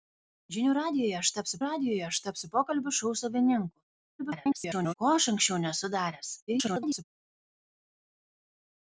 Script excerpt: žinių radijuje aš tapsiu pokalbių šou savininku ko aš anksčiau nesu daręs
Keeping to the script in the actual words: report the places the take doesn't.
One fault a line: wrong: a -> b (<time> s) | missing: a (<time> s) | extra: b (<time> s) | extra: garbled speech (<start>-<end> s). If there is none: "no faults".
extra: radijuje aš tapsiu (1.6 s)
extra: garbled speech (4.2-4.9 s)
extra: garbled speech (6.5-7.0 s)